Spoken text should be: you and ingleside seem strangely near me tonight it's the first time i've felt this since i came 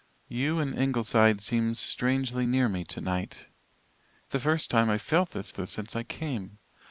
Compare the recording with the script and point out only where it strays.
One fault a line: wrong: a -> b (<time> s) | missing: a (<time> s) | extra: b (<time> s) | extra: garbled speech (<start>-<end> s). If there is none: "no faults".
missing: it's (3.5 s)
extra: this (5.5 s)